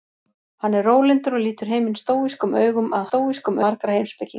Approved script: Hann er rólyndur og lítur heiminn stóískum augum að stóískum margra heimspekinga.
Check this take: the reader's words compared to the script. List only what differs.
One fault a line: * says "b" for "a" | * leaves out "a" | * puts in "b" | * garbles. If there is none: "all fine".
all fine